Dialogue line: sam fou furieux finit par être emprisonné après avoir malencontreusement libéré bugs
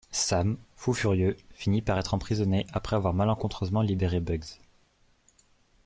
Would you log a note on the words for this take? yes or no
no